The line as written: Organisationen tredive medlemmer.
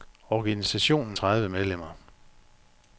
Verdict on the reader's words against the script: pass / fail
pass